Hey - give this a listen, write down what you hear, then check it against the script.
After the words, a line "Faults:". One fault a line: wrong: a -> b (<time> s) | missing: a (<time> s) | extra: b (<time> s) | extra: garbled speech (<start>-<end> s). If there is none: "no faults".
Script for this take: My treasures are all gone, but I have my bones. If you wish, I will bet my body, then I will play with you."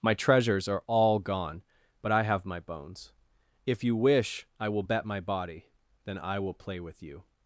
My treasures are all gone, but I have my bones. If you wish, I will bet my body, then I will play with you."
Faults:
no faults